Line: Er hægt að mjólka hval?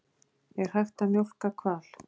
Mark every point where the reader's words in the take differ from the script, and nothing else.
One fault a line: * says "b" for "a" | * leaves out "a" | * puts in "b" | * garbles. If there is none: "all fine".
all fine